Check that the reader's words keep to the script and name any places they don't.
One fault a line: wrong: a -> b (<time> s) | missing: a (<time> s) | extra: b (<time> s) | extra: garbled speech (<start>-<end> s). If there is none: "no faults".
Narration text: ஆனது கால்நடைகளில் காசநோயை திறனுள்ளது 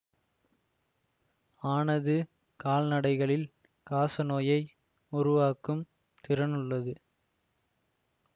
extra: உருவாக்கும் (5.1 s)